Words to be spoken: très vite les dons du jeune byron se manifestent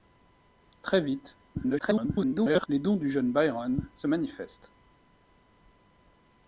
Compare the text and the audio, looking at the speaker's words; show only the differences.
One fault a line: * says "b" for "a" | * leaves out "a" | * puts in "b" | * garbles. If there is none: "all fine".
* garbles